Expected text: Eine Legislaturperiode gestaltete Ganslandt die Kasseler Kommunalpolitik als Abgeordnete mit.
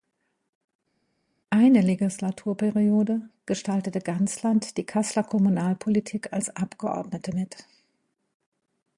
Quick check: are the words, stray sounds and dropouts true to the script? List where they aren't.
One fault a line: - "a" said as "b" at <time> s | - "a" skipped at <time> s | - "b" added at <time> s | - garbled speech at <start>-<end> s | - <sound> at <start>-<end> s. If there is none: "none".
none